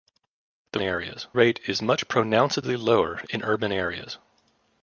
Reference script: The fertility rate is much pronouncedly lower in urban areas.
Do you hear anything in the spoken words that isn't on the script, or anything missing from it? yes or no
yes